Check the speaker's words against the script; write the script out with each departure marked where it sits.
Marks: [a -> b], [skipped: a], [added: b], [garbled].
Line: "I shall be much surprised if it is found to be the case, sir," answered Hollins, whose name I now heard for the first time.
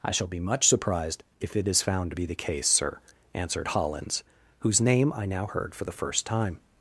"I shall be much surprised if it is found to be the case, sir," answered Hollins, whose name I now heard for the first time.